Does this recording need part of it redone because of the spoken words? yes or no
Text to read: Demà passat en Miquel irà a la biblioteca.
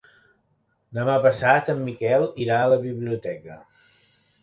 no